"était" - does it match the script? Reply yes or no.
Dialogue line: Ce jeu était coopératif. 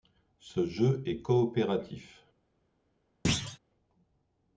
no